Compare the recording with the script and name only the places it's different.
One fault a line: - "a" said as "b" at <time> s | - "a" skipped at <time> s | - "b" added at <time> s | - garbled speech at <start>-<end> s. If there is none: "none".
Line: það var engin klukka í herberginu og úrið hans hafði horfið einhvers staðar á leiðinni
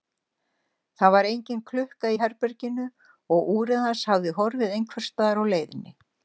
none